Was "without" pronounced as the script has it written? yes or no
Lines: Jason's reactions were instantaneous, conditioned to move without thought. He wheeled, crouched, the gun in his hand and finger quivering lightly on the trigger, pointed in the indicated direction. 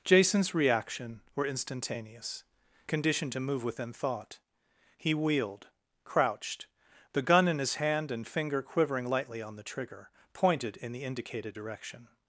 no